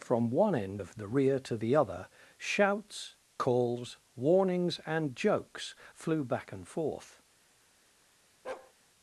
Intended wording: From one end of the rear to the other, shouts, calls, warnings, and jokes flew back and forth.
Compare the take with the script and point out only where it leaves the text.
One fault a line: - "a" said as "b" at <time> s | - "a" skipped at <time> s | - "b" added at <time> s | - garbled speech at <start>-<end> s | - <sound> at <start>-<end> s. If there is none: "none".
- bark at 8.4-8.7 s